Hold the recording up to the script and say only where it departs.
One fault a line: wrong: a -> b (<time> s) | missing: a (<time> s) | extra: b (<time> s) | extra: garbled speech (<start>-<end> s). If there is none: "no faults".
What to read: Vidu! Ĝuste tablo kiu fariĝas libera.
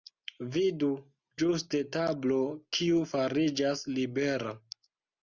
no faults